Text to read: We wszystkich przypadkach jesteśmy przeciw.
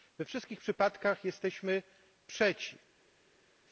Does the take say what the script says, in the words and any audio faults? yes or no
yes